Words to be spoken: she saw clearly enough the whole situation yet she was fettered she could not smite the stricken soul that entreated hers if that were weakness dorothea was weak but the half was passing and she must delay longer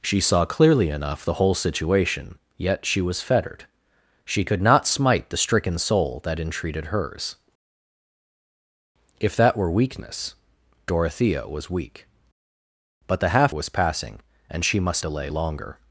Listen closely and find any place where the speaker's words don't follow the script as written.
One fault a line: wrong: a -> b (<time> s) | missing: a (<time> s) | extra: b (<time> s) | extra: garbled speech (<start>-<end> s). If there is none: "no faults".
no faults